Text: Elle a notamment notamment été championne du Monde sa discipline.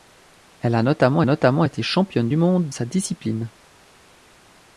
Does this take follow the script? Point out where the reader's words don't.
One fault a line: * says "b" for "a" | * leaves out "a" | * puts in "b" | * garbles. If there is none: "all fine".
all fine